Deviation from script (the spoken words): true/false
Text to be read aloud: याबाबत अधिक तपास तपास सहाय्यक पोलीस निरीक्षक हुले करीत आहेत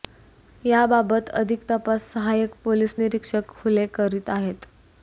true